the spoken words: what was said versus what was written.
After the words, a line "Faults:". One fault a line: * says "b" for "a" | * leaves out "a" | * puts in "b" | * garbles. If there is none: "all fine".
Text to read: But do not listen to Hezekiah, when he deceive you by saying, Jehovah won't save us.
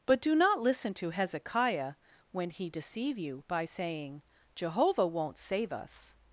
But do not listen to Hezekiah, when he deceive you by saying, Jehovah won't save us.
Faults:
all fine